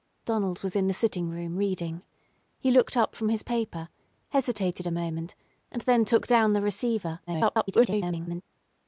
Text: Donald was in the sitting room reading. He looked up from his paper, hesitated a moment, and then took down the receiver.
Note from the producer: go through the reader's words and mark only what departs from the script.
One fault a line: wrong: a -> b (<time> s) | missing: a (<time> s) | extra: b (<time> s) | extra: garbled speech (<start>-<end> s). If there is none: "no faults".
extra: garbled speech (7.3-8.4 s)